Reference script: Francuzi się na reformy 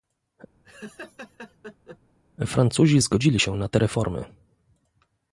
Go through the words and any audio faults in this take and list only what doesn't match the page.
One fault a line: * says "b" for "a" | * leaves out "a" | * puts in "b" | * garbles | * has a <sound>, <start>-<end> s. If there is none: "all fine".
* has a laugh, 0.6-2.0 s
* puts in "zgodzili"
* puts in "te"